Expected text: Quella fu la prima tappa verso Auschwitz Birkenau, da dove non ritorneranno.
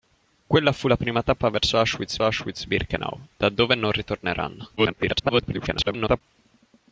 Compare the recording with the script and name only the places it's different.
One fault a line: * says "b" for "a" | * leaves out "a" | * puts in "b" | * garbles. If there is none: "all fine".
* puts in "Auschwitz"
* garbles